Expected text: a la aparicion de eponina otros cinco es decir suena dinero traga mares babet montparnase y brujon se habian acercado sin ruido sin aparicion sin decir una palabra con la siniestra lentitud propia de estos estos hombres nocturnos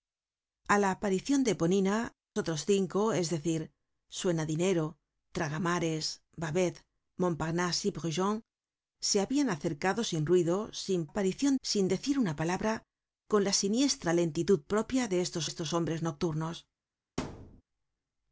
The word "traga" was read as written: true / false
true